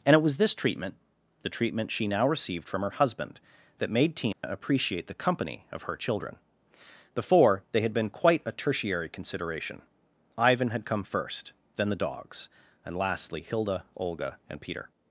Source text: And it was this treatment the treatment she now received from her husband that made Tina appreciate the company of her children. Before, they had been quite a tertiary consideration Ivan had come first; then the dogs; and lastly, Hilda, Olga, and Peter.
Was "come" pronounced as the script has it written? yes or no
yes